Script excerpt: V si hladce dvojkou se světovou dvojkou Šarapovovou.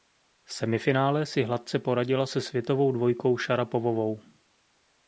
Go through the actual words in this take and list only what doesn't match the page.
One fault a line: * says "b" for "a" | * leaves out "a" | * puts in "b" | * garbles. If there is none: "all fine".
* puts in "semifinále"
* says "poradila" for "dvojkou"